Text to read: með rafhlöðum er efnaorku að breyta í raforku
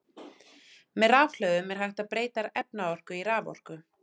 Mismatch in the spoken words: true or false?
true